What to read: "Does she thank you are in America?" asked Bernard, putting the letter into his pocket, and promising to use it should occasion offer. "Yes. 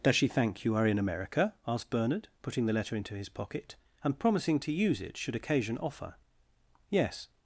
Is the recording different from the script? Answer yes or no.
no